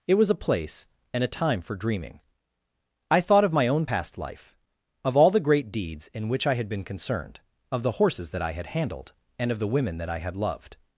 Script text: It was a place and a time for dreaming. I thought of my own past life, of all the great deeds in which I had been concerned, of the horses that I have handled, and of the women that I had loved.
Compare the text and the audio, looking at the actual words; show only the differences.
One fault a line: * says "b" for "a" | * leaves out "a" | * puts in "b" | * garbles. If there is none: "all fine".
* says "had" for "have"